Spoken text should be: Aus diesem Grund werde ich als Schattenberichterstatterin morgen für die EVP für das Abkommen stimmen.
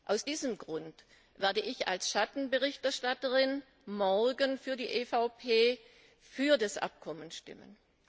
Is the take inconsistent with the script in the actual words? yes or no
no